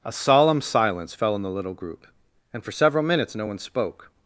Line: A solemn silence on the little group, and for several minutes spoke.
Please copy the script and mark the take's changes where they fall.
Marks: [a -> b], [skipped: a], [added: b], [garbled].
A solemn silence [added: fell] on the little group, and for several minutes [added: no one] spoke.